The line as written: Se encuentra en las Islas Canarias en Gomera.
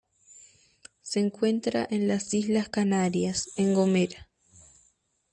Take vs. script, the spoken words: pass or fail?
pass